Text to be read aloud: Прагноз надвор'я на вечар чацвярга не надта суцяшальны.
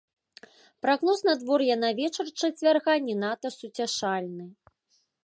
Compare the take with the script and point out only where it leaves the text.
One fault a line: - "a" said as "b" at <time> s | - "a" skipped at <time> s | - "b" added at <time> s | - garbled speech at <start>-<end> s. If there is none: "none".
none